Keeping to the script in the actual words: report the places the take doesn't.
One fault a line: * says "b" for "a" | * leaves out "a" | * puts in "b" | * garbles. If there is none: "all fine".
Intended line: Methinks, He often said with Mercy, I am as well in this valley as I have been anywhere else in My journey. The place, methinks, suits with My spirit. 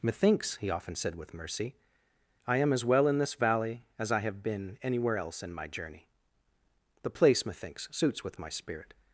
all fine